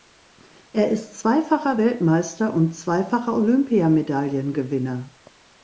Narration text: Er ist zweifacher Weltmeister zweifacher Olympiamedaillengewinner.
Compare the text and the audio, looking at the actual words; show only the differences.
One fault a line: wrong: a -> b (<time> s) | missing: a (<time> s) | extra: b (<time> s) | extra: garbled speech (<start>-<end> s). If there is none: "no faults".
extra: und (2.5 s)